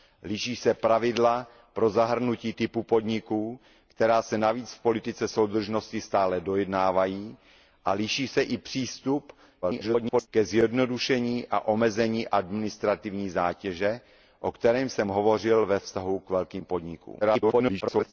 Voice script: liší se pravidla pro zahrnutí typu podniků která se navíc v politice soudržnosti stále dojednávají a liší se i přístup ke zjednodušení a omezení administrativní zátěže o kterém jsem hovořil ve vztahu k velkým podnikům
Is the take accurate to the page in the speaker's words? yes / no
no